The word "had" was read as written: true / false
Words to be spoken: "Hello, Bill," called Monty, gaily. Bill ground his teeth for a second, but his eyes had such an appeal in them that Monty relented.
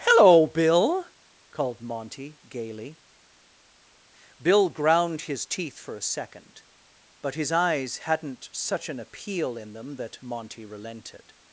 false